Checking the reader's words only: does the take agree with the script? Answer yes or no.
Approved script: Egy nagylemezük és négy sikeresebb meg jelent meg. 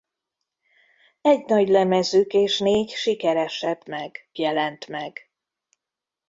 yes